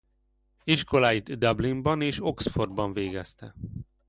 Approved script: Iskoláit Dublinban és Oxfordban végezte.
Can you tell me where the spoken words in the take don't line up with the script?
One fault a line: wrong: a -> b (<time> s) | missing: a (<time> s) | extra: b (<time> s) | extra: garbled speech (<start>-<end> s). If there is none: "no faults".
no faults